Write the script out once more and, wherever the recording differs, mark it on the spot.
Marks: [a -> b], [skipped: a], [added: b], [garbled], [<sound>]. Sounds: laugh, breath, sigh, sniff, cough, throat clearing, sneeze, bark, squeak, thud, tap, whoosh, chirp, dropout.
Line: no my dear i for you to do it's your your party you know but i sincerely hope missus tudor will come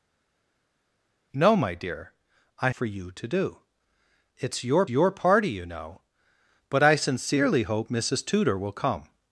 no my dear i for you to do it's your your party you know but i sincerely hope missus tudor will come